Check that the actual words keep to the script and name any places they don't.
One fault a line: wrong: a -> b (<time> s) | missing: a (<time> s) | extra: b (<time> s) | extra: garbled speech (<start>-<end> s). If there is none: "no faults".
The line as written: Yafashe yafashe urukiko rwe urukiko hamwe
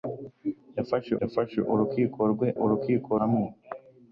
no faults